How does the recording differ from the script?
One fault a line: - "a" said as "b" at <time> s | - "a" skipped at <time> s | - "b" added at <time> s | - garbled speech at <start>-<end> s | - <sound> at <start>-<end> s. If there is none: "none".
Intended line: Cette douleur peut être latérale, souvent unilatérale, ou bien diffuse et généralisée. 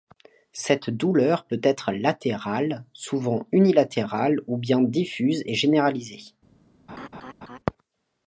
- laugh at 6.9-7.6 s